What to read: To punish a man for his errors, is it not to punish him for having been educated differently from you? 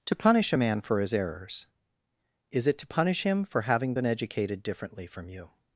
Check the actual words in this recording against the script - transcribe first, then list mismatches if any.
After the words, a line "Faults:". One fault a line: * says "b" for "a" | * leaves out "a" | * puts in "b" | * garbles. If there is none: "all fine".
To punish a man for his errors, is it to punish him for having been educated differently from you?
Faults:
* leaves out "not"